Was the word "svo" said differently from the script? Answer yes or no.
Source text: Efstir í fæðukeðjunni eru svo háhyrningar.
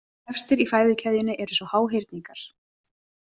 no